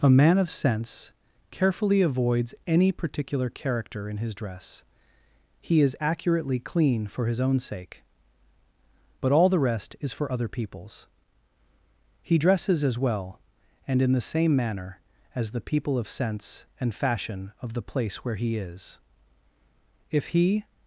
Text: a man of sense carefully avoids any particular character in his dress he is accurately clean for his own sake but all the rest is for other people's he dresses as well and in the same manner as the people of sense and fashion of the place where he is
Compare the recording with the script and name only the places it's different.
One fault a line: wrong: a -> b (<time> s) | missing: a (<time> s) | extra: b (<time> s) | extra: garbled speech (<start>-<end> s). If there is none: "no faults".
extra: if he (20.1 s)